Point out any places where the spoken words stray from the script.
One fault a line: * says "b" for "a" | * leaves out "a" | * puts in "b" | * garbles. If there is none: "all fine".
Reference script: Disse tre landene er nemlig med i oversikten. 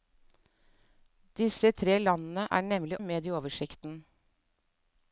all fine